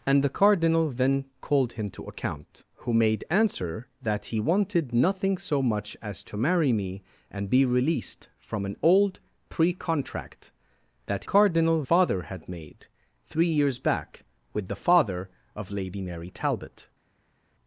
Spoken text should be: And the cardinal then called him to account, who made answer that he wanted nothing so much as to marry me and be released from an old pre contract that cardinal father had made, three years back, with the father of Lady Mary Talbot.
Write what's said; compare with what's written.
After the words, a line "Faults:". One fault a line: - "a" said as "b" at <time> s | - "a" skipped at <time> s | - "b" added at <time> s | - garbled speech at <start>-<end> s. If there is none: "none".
And the cardinal then called him to account, who made answer that he wanted nothing so much as to marry me and be released from an old pre contract that cardinal father had made, three years back, with the father of Lady Mary Talbot.
Faults:
none